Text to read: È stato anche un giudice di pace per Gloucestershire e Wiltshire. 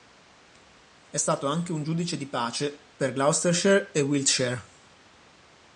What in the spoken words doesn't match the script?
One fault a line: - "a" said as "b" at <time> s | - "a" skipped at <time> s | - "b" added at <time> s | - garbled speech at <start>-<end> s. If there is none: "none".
none